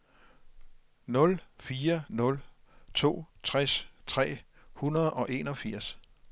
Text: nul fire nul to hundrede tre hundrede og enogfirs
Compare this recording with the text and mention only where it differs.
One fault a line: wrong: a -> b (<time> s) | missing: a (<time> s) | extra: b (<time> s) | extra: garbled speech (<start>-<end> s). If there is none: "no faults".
wrong: hundrede -> tres (3.4 s)